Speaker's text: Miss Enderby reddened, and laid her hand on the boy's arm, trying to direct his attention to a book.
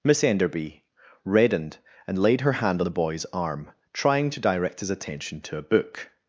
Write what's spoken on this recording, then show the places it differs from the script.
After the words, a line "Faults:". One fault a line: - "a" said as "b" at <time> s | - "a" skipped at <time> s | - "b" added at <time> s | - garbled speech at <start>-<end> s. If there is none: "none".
Miss Enderby reddened, and laid her hand on the boy's arm, trying to direct his attention to a book.
Faults:
none